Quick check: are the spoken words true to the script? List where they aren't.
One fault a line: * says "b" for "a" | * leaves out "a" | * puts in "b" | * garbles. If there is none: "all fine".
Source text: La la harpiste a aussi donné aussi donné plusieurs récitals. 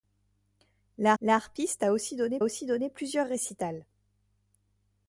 all fine